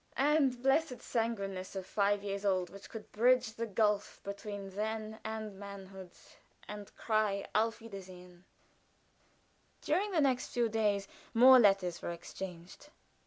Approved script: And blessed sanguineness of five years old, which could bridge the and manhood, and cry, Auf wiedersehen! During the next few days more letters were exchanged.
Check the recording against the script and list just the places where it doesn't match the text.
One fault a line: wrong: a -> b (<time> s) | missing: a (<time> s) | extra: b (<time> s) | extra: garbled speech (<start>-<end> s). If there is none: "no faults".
extra: gulf between then (3.7 s)